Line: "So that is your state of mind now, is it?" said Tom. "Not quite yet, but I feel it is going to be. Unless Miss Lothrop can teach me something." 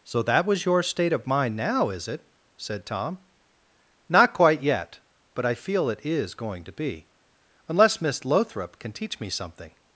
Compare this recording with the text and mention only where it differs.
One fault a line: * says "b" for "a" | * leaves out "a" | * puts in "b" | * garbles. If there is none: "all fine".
* says "was" for "is"